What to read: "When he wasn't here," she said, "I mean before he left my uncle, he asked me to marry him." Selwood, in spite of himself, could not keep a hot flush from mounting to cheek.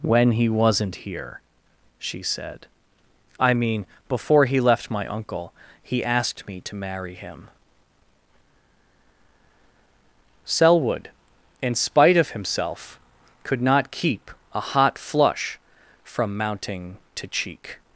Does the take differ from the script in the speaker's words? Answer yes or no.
no